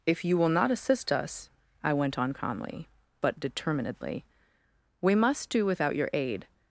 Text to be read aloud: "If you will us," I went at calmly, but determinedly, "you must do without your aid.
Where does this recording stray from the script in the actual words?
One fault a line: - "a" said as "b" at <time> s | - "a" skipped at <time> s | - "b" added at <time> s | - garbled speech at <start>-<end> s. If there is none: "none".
- "not assist" added at 0.5 s
- "at" said as "on" at 2.2 s
- "you" said as "we" at 5.0 s